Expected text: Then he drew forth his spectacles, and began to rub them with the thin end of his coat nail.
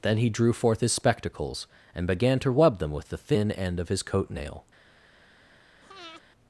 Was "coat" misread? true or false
false